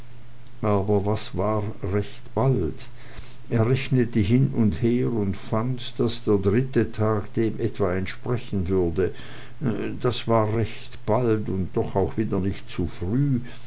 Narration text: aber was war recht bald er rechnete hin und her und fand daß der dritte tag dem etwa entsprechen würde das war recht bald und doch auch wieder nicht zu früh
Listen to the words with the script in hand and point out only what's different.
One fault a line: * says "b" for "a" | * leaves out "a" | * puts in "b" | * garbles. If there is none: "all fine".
all fine